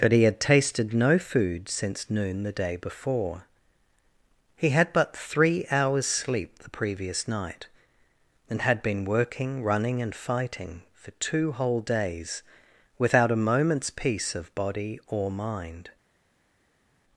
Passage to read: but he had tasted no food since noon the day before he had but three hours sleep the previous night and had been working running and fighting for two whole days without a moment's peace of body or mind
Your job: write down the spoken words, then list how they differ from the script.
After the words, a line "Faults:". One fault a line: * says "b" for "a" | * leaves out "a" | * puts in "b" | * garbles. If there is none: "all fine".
but he had tasted no food since noon the day before he had but three hours sleep the previous night and had been working running and fighting for two whole days without a moment's peace of body or mind
Faults:
all fine